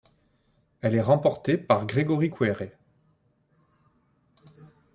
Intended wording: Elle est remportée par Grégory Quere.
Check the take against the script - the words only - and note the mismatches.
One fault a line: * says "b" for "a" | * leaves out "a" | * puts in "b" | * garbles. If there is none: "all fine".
all fine